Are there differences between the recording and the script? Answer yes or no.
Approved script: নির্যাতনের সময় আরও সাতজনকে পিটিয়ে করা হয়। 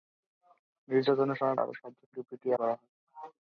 no